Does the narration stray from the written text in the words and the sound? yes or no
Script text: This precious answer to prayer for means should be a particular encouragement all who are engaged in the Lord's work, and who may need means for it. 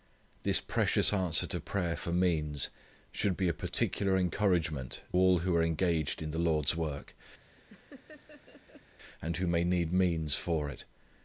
yes